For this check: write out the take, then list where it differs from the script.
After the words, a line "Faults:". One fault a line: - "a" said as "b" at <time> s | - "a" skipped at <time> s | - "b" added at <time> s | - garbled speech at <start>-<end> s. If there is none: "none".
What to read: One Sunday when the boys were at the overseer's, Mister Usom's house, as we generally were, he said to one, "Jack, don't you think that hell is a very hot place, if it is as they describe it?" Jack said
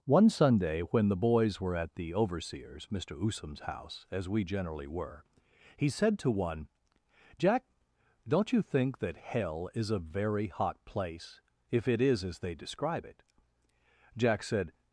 One Sunday when the boys were at the overseer's, Mister Usom's house, as we generally were, he said to one, "Jack, don't you think that hell is a very hot place, if it is as they describe it?" Jack said
Faults:
none